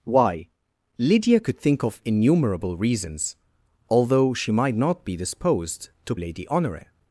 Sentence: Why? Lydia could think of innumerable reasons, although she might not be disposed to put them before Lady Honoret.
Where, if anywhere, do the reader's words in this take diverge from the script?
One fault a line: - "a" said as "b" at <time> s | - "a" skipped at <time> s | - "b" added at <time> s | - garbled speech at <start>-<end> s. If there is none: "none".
- "put them before" skipped at 6.1 s